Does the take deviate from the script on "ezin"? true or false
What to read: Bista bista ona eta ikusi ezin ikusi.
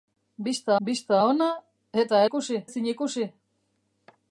false